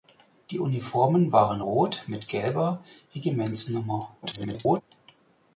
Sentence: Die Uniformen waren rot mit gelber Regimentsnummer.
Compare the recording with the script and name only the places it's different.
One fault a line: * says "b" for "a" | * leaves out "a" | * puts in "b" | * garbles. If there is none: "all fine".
* garbles